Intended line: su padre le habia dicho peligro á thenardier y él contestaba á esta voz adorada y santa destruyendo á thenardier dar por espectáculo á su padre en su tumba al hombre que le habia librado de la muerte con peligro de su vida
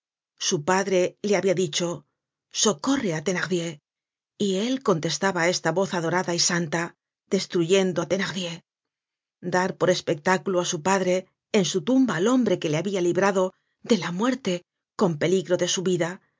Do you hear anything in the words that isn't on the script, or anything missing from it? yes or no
yes